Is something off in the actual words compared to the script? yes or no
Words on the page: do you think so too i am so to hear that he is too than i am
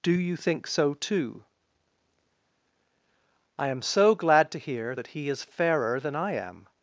yes